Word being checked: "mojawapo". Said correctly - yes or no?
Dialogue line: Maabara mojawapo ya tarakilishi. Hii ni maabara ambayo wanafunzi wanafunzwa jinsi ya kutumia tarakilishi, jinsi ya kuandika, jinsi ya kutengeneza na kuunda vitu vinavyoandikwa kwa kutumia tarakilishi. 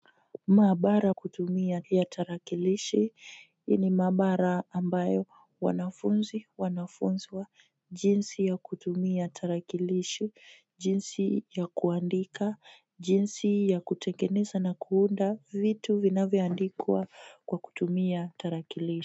no